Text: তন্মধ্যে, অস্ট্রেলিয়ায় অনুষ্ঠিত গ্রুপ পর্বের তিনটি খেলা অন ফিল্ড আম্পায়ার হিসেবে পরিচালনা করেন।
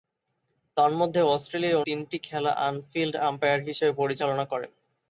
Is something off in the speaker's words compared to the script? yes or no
yes